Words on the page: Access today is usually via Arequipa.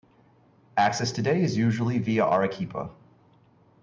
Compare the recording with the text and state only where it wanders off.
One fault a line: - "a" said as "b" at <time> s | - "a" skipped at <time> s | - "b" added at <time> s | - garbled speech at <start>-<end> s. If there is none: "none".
none